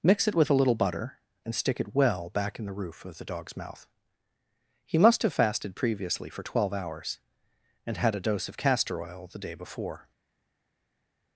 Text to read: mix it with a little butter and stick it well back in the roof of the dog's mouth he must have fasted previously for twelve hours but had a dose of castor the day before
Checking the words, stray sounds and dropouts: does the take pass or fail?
fail